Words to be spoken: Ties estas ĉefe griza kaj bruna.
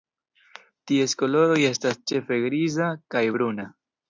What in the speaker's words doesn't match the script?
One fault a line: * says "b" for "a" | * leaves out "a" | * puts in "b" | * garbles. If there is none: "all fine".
* puts in "koloroj"